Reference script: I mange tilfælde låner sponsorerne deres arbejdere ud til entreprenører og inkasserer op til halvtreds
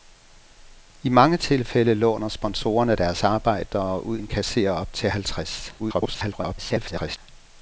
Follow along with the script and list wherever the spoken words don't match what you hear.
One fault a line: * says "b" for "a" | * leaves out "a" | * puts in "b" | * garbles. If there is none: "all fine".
* leaves out "til entreprenører og"
* garbles